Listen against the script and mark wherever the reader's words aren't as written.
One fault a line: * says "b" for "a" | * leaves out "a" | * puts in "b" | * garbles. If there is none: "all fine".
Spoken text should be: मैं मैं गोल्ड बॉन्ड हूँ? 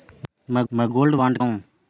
all fine